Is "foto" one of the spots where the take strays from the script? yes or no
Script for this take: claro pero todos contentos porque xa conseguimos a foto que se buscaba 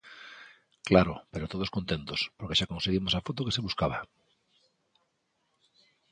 no